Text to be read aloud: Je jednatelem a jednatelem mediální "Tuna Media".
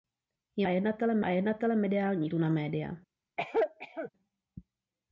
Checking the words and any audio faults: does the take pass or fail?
fail